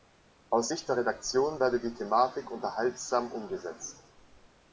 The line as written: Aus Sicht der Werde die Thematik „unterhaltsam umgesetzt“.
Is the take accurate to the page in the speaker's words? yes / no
no